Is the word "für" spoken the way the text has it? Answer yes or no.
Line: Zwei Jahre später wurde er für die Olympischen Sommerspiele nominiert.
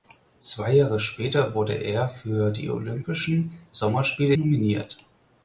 yes